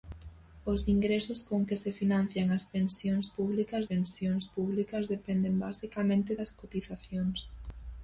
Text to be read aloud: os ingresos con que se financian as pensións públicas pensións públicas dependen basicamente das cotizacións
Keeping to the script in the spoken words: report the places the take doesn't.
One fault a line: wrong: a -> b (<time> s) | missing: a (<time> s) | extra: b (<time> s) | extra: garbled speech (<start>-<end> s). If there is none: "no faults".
no faults